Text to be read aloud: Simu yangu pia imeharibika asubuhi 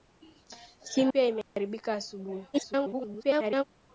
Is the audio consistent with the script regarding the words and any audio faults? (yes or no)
no